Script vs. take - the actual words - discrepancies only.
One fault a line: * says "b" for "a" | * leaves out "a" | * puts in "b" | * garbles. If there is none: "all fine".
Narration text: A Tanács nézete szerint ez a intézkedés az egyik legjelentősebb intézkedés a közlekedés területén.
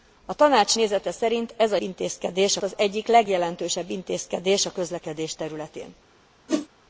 all fine